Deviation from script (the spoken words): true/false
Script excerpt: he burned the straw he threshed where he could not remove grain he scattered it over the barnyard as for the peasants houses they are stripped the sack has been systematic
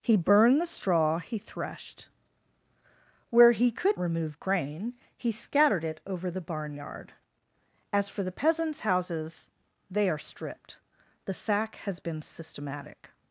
true